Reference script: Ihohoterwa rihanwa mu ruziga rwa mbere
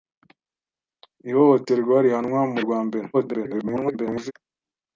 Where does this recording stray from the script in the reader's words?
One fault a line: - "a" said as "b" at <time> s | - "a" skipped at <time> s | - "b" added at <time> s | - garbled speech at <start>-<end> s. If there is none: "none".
- "ruziga" skipped at 2.6 s
- garbled speech at 3.1-4.3 s